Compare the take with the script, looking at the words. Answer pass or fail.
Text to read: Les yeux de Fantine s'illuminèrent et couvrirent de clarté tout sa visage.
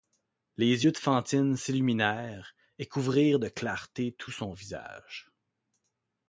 fail